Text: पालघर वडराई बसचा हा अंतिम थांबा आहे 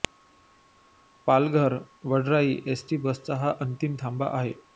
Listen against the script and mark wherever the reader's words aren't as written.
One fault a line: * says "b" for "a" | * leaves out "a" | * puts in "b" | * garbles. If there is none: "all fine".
* puts in "एसटी"